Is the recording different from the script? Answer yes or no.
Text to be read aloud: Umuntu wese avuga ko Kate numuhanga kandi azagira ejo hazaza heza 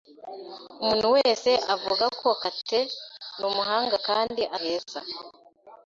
yes